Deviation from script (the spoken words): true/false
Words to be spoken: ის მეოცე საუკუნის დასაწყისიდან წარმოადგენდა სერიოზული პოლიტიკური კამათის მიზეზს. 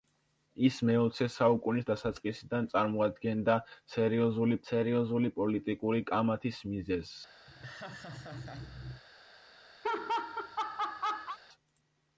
true